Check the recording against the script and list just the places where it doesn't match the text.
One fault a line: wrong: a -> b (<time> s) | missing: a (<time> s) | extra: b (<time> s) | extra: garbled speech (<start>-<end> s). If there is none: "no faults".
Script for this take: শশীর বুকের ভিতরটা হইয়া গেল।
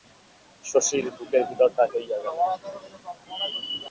no faults